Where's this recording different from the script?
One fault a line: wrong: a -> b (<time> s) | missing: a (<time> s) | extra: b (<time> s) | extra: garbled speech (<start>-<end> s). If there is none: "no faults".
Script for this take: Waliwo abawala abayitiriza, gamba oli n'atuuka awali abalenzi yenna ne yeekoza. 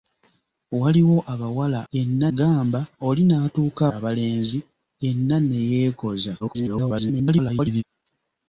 wrong: abayitiriza -> yenna (1.9 s)
missing: awali (3.8 s)
extra: garbled speech (6.4-7.8 s)